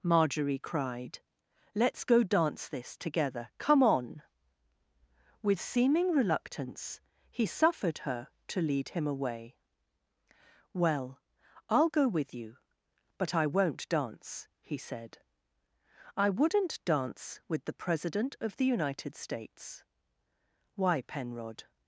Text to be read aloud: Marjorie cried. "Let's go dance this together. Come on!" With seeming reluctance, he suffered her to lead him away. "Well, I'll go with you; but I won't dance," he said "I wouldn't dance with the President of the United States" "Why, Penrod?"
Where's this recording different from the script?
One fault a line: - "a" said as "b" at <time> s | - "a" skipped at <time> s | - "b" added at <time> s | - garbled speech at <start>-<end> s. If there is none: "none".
none